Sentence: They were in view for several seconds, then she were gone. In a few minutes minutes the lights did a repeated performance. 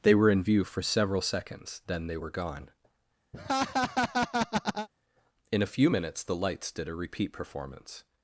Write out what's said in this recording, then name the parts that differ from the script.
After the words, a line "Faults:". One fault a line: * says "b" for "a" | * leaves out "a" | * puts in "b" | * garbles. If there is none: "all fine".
They were in view for several seconds, then they were gone. In a few minutes the lights did a repeat performance.
Faults:
* says "they" for "she"
* leaves out "minutes"
* says "repeat" for "repeated"